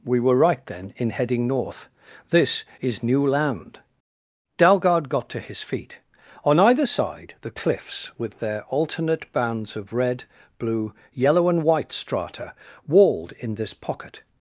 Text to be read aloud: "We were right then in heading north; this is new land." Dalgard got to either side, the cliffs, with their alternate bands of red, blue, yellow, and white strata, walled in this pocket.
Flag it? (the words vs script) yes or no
yes